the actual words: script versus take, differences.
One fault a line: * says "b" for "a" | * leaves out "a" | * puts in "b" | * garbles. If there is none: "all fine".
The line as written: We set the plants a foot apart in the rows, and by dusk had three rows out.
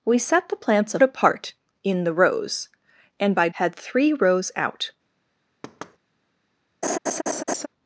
* leaves out "foot"
* leaves out "dusk"